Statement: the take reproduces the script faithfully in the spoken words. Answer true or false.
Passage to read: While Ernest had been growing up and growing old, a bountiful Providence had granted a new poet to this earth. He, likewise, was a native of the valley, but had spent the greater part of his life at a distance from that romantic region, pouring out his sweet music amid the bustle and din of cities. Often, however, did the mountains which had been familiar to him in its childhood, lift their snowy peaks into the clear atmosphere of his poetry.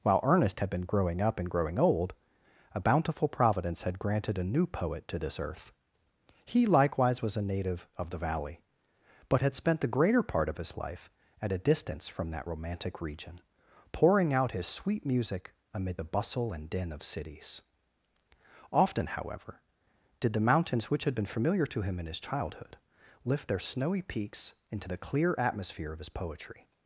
false